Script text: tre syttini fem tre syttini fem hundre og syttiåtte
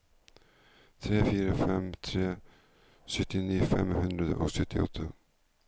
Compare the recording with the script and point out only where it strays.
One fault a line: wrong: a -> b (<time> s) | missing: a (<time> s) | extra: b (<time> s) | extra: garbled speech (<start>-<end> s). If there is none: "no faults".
wrong: syttini -> fire (1.3 s)